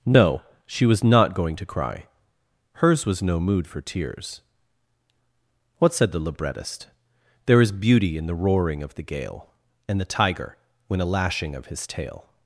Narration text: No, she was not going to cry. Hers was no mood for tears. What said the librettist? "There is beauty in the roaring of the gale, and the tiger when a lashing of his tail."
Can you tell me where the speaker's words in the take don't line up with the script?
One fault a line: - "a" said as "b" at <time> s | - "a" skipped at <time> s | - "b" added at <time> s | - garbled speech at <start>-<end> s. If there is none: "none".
none